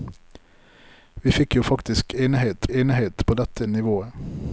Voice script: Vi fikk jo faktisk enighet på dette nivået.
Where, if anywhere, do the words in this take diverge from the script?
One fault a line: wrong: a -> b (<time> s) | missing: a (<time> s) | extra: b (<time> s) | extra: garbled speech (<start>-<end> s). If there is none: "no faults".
extra: enighet (2.7 s)